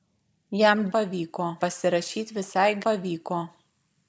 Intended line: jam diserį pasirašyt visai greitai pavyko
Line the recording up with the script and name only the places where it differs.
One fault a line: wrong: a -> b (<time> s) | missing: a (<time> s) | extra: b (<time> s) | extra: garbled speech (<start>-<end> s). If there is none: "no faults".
wrong: diserį -> pavyko (1.0 s)
missing: greitai (2.7 s)